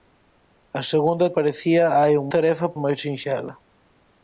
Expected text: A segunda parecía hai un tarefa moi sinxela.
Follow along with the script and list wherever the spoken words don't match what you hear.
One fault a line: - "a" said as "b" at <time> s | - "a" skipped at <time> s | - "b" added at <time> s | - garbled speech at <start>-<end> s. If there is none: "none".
none